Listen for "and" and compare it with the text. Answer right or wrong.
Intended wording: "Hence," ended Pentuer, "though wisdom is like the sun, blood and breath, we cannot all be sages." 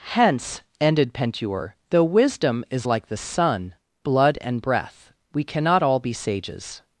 right